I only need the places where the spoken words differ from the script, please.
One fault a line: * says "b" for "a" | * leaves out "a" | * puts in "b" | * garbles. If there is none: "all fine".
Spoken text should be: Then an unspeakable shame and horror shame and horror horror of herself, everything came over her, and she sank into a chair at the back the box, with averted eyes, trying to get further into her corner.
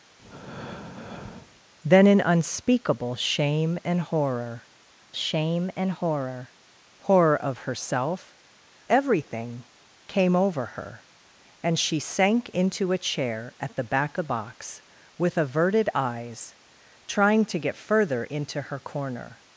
all fine